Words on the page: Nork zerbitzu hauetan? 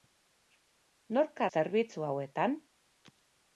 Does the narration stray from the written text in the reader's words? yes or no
no